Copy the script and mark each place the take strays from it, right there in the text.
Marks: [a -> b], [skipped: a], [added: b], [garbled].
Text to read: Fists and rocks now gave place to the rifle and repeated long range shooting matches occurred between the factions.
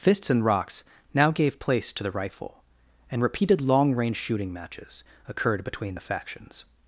Fists and rocks now gave place to the rifle and repeated long range shooting matches occurred between the factions.